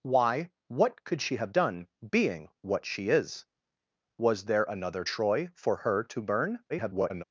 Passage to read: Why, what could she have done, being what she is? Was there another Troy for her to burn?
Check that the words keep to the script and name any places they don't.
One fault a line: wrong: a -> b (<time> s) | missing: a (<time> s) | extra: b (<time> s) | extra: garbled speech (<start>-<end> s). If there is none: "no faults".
extra: garbled speech (6.7-7.2 s)